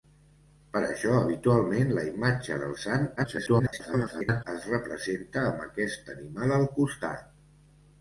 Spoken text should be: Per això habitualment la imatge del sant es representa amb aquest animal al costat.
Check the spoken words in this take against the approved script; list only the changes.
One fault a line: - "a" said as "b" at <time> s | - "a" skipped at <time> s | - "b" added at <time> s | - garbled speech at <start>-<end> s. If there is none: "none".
- garbled speech at 3.2-4.4 s